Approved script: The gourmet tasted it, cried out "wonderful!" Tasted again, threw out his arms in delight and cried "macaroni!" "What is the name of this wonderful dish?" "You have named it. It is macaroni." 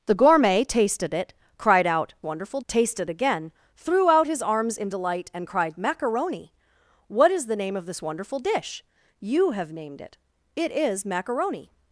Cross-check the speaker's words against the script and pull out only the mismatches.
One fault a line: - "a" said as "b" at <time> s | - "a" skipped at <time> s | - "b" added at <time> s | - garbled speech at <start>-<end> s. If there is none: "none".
none